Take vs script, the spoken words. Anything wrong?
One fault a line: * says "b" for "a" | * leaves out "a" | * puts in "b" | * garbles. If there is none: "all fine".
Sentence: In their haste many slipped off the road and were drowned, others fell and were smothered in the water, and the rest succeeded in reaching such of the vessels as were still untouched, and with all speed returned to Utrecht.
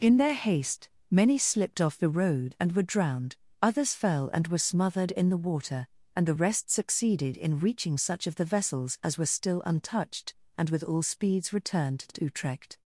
* says "speeds" for "speed"